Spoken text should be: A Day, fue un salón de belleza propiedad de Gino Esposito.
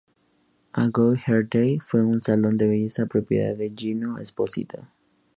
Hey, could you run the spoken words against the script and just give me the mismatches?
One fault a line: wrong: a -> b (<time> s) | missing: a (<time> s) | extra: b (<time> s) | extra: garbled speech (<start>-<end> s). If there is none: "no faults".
extra: Good Hair (0.9 s)